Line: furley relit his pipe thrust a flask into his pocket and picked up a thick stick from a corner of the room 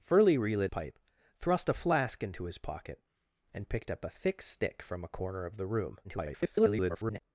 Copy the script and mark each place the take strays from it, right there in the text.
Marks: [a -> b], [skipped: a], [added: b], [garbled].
furley relit [skipped: his] pipe thrust a flask into his pocket and picked up a thick stick from a corner of the room [garbled]